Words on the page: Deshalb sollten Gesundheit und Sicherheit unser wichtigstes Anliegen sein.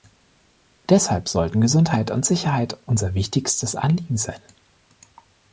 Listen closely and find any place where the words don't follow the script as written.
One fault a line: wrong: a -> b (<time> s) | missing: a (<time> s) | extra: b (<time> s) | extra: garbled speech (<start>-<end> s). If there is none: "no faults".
no faults